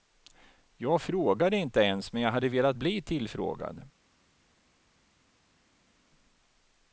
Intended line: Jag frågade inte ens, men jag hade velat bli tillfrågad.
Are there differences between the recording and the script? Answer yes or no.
no